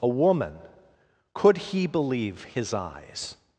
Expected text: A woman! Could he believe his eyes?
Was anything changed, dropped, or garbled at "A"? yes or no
no